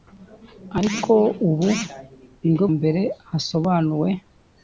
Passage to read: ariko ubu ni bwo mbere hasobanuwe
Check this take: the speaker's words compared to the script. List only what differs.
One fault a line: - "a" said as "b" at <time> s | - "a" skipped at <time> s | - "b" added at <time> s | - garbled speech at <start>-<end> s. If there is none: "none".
none